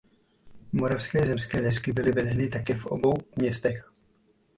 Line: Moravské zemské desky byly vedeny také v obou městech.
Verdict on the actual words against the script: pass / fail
pass